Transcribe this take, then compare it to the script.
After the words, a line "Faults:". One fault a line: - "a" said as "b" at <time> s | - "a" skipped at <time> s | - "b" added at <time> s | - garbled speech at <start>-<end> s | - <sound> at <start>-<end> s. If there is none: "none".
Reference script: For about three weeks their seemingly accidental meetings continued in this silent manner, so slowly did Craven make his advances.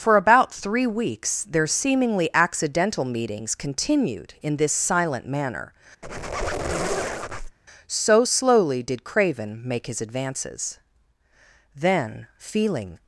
For about three weeks their seemingly accidental meetings continued in this silent manner, so slowly did Craven make his advances. Then, feeling
Faults:
- squeak at 6.0-7.6 s
- "Then feeling" added at 11.7 s